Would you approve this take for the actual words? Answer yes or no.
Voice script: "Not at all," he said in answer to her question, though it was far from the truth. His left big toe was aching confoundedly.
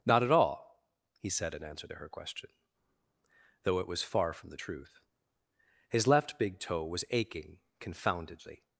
yes